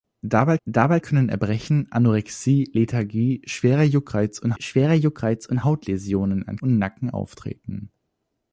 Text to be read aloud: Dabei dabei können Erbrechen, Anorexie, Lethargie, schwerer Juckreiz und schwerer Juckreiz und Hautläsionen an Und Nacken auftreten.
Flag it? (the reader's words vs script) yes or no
no